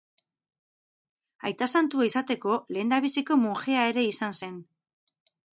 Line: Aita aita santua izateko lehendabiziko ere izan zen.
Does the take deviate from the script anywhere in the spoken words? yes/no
yes